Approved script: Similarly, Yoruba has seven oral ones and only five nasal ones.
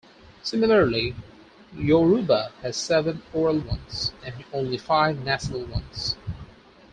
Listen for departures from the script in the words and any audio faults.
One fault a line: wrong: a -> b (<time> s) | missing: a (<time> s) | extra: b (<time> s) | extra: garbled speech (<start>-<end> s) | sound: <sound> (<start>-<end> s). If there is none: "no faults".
no faults